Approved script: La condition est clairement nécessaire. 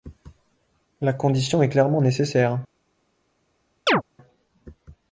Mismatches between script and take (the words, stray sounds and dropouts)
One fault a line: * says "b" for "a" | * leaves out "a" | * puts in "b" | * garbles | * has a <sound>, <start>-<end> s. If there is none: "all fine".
* has a chirp, 3.9-4.0 s